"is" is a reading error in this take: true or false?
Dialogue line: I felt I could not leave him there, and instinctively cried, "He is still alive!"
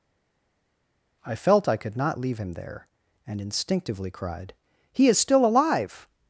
false